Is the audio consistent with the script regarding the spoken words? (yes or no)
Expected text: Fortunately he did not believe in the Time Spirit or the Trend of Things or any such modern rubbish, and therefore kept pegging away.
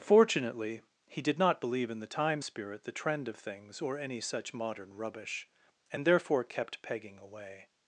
no